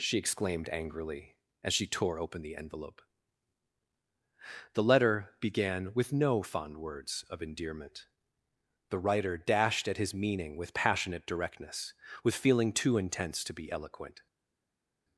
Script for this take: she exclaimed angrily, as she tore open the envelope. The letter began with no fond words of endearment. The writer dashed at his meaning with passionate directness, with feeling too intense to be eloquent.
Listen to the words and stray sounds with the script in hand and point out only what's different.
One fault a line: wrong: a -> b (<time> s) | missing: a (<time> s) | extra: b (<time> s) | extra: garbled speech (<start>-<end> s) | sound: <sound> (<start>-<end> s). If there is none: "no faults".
no faults